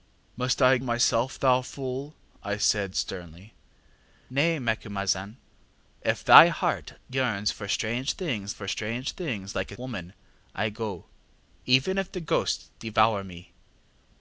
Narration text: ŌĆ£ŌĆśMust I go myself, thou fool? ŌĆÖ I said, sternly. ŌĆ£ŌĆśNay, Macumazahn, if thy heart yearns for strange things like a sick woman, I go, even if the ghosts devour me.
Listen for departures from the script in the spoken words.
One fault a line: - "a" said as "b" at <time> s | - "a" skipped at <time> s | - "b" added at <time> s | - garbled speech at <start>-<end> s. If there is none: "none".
- "go" skipped at 0.8 s
- "for strange things" added at 8.5 s
- "sick" skipped at 9.8 s